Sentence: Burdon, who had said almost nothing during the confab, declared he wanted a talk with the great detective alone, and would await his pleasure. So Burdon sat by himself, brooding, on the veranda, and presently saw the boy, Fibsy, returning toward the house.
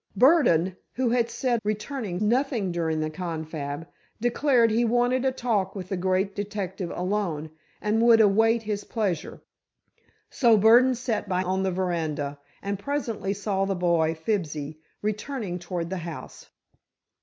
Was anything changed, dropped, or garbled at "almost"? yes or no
yes